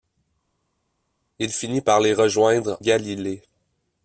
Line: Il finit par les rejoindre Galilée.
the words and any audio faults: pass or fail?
pass